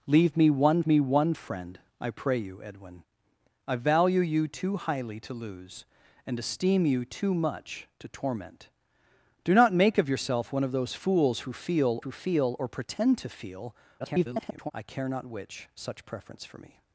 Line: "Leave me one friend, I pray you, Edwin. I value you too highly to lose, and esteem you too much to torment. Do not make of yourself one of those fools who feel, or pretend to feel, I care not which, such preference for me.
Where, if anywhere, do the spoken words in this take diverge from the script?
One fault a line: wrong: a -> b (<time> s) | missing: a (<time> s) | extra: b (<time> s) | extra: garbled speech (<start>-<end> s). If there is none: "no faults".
extra: me one (0.8 s)
extra: who feel (12.0 s)
extra: garbled speech (14.0-14.7 s)